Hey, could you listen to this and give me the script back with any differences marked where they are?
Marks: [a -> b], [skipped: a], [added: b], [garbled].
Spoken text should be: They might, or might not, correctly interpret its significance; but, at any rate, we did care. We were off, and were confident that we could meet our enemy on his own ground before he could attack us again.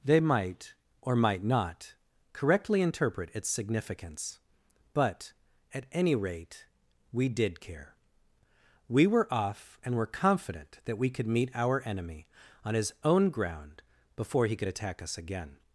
They might, or might not, correctly interpret its significance; but, at any rate, we did care. We were off, and were confident that we could meet our enemy on his own ground before he could attack us again.